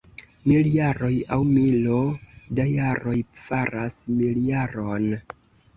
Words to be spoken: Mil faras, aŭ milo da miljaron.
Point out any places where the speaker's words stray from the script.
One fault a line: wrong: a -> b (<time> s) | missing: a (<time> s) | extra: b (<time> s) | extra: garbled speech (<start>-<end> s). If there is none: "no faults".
wrong: faras -> jaroj (0.8 s)
extra: jaroj faras (2.8 s)